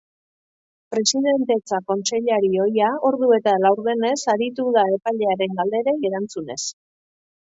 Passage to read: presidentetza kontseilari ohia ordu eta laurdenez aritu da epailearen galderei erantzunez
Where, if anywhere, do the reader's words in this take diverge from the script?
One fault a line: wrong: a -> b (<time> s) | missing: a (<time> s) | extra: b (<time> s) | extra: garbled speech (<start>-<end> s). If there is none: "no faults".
no faults